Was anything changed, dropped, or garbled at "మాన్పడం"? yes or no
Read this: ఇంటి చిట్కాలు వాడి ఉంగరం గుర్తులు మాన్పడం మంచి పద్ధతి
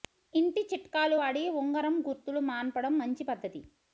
no